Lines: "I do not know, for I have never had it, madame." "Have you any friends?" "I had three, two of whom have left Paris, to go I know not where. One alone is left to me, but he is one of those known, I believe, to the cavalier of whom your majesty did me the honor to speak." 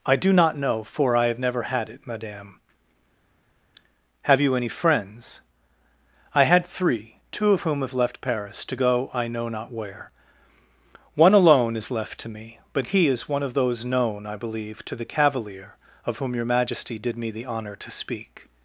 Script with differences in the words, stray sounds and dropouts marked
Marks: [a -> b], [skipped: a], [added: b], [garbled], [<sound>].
"I do not know, for I have never had it, madame." "Have you any friends?" "I had three, two of whom have left Paris, to go I know not where. One alone is left to me, but he is one of those known, I believe, to the cavalier of whom your majesty did me the honor to speak."